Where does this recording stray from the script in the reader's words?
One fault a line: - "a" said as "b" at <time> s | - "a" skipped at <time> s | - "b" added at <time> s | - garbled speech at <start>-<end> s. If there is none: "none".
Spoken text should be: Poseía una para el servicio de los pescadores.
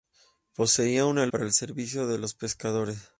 none